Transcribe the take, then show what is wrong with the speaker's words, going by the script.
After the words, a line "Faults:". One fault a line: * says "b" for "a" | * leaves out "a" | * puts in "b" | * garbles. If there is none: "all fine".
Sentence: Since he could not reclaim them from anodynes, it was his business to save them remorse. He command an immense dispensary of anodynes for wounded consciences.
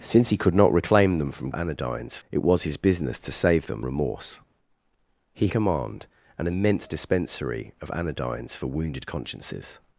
Since he could not reclaim them from anodynes, it was his business to save them remorse. He command an immense dispensary of anodynes for wounded consciences.
Faults:
all fine